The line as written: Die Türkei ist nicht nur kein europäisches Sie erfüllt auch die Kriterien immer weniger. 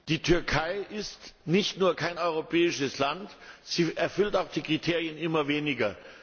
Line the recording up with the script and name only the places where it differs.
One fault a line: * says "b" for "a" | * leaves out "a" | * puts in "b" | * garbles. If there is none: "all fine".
* puts in "Land"